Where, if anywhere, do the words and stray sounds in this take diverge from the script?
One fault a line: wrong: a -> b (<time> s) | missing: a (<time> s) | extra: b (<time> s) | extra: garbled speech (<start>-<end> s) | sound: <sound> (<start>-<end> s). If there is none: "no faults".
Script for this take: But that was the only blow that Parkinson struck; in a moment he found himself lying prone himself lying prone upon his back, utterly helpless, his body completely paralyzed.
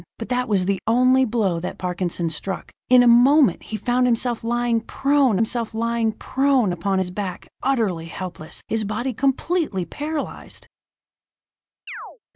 sound: chirp (11.9-12.2 s)